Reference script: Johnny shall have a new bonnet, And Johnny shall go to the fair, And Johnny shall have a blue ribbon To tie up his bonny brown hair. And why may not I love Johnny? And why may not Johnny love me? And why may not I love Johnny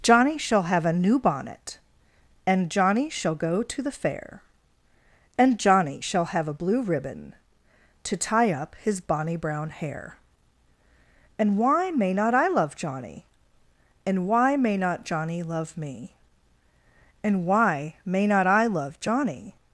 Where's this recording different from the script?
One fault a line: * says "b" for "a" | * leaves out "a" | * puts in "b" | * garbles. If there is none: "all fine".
all fine